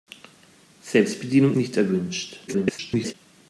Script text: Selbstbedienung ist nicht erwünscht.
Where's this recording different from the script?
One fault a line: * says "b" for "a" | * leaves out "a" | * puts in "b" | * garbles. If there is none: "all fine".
* leaves out "ist"
* garbles